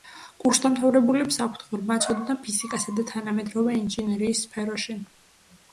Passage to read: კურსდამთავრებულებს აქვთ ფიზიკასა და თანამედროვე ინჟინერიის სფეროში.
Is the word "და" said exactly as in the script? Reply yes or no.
yes